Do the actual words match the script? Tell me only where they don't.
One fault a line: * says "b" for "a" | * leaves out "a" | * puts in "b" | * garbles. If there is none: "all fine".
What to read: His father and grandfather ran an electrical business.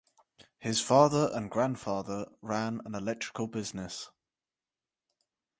all fine